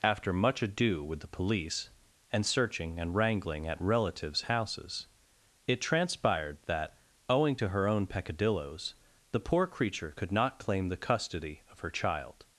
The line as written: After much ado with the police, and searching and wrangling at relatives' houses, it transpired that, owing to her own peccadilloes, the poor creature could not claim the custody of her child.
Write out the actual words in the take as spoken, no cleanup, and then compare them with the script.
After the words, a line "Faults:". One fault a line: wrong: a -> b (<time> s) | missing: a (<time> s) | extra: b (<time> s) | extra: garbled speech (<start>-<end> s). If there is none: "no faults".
After much ado with the police, and searching and wrangling at relatives' houses, it transpired that, owing to her own peccadilloes, the poor creature could not claim the custody of her child.
Faults:
no faults